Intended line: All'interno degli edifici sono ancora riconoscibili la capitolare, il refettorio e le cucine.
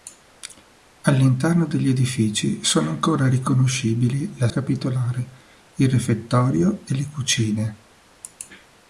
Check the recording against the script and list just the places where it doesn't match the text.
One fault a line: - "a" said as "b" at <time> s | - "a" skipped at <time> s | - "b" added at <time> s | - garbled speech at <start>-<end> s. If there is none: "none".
none